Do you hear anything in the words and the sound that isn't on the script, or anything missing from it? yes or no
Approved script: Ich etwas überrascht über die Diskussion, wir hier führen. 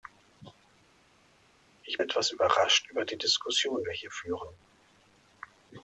no